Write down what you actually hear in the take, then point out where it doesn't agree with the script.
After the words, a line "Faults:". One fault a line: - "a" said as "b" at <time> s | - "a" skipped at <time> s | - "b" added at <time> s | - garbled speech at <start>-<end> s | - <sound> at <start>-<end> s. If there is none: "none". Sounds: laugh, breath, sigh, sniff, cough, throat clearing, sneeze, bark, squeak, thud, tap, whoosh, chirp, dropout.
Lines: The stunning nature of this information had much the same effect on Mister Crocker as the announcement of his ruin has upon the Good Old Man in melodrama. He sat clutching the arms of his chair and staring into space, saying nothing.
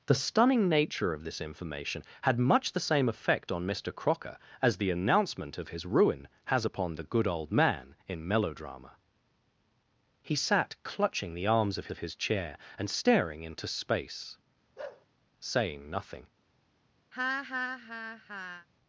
The stunning nature of this information had much the same effect on Mister Crocker as the announcement of his ruin has upon the Good Old Man in melodrama. He sat clutching the arms of of his chair and staring into space, saying nothing.
Faults:
- "of" added at 11.9 s
- bark at 14.8-15.1 s
- laugh at 17.1-18.7 s